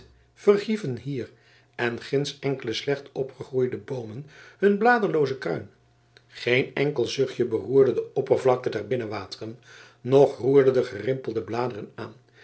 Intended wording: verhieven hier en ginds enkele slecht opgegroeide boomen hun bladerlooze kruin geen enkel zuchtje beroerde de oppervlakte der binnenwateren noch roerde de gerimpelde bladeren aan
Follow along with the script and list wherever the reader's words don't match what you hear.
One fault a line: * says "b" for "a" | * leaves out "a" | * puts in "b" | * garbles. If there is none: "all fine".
all fine